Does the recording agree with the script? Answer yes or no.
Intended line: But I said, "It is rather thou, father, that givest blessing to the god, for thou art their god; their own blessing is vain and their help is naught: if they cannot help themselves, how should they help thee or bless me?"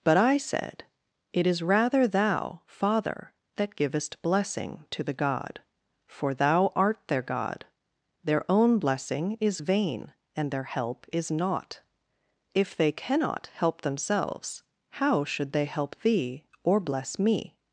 yes